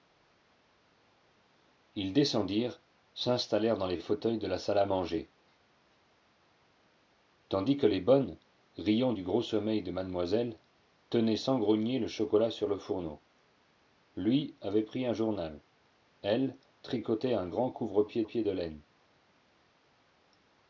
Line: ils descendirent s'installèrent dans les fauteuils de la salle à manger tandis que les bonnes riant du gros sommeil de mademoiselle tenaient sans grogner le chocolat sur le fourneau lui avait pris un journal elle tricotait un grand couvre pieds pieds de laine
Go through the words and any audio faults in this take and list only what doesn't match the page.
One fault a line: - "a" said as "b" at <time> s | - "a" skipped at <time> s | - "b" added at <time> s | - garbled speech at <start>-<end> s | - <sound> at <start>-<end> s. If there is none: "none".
none